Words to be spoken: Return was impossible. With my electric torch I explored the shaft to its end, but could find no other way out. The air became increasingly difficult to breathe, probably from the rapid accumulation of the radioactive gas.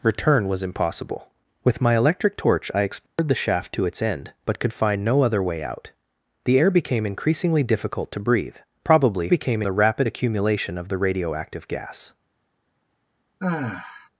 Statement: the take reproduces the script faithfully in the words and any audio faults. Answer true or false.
false